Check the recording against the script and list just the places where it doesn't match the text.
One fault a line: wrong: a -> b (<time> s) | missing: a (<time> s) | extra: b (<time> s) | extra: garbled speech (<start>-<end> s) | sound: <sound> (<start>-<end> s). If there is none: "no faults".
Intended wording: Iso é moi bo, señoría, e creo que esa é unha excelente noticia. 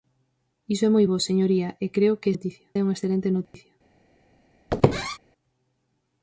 wrong: esa -> noticia (2.3 s)
sound: dropout (3.4-3.5 s)
sound: squeak (4.7-5.2 s)